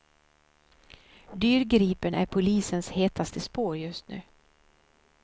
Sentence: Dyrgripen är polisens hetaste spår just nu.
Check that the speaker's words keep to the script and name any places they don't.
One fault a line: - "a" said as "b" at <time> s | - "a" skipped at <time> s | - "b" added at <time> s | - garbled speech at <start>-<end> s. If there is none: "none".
none